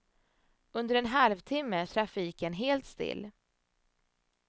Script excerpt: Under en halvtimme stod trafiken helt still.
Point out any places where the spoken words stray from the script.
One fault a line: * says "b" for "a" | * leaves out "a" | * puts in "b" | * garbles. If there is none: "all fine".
* leaves out "stod"